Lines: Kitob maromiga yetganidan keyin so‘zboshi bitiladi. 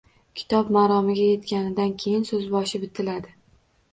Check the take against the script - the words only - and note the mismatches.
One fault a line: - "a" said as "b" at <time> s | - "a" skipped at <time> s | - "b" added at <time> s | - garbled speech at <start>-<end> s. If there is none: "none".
none